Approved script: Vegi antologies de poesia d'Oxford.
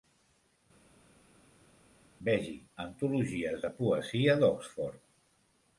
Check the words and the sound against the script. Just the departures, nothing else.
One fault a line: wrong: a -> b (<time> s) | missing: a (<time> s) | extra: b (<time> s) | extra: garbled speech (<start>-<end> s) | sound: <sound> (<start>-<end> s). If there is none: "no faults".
no faults